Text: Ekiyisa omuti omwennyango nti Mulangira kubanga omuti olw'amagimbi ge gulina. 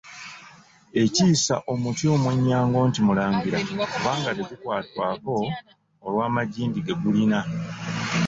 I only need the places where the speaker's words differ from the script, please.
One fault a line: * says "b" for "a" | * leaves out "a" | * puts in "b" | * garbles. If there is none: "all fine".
* says "tegukwatwako" for "omuti"